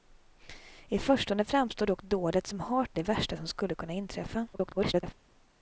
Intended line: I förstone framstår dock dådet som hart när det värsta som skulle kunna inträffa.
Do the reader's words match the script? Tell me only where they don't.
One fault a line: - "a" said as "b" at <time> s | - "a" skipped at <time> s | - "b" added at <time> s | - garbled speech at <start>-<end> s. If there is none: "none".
- "när" skipped at 3.0 s
- garbled speech at 4.5-5.1 s